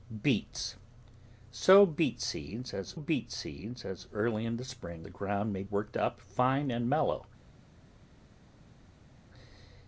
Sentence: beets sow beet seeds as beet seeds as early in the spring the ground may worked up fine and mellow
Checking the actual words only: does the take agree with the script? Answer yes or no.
yes